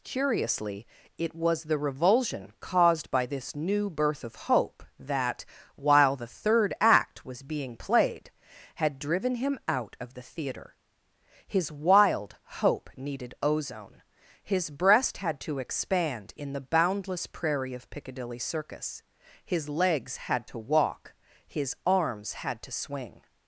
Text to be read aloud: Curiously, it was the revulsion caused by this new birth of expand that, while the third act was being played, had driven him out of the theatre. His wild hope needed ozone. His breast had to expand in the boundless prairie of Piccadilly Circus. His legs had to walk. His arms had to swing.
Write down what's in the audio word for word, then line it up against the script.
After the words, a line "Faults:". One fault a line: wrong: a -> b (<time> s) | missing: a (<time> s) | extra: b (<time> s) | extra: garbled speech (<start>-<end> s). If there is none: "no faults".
Curiously, it was the revulsion caused by this new birth of hope that, while the third act was being played, had driven him out of the theatre. His wild hope needed ozone. His breast had to expand in the boundless prairie of Piccadilly Circus. His legs had to walk. His arms had to swing.
Faults:
wrong: expand -> hope (4.3 s)